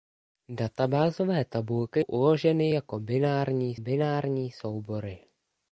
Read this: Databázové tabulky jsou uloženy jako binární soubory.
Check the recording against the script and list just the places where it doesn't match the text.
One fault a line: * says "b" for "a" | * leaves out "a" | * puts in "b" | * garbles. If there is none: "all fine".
* leaves out "jsou"
* puts in "binární"